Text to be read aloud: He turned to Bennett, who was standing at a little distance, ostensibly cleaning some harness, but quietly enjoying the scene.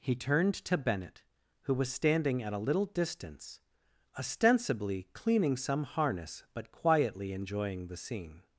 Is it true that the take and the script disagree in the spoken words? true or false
false